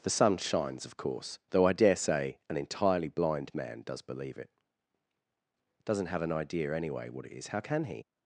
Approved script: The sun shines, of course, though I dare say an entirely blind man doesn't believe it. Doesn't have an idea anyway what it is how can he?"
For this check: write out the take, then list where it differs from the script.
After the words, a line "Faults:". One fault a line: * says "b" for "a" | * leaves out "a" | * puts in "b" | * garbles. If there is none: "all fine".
The sun shines, of course, though I dare say an entirely blind man does believe it. Doesn't have an idea anyway what it is how can he?"
Faults:
* says "does" for "doesn't"